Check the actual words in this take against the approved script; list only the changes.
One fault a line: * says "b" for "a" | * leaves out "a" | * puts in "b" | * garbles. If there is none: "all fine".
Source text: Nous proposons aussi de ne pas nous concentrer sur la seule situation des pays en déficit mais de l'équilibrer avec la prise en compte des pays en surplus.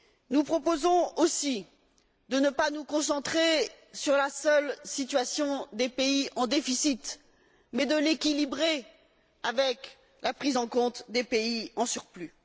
all fine